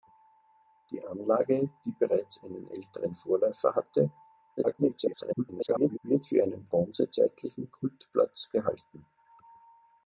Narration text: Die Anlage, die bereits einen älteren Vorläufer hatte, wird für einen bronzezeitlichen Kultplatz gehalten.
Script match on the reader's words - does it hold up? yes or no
no